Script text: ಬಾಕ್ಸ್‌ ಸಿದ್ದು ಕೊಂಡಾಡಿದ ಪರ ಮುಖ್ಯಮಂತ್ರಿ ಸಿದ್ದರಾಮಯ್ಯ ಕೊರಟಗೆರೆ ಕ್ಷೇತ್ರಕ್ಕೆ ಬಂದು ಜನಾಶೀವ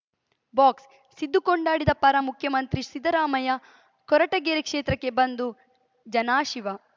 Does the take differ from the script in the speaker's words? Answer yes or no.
no